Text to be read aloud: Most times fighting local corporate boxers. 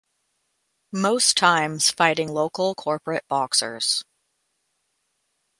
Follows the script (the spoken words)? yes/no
yes